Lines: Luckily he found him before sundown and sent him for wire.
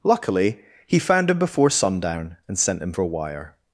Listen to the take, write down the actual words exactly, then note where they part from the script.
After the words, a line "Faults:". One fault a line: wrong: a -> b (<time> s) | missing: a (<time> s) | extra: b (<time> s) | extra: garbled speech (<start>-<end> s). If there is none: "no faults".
Luckily he found him before sundown and sent him for wire.
Faults:
no faults